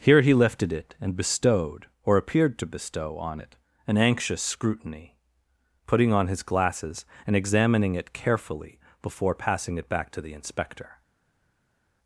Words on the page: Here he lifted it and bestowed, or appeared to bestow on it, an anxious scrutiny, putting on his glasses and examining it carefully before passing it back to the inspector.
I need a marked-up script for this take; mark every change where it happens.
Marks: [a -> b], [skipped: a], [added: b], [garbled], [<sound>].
Here he lifted it and bestowed, or appeared to bestow on it, an anxious scrutiny, putting on his glasses and examining it carefully before passing it back to the inspector.